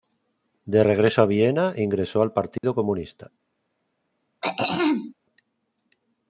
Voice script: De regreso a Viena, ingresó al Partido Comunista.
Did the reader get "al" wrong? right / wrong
right